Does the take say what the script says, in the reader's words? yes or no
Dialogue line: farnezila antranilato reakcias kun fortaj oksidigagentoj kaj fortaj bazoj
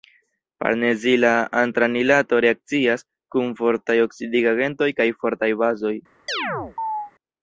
yes